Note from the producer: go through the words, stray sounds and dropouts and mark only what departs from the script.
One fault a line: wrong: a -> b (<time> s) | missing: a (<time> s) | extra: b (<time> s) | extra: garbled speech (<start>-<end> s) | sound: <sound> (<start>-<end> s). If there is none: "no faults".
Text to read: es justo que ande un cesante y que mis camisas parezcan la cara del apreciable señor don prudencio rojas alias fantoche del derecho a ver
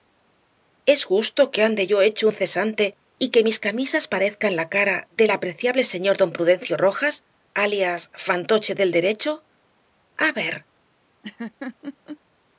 extra: yo hecho (1.9 s)
sound: laugh (11.2-12.2 s)